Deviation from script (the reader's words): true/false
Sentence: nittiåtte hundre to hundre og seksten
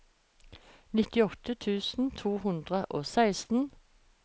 true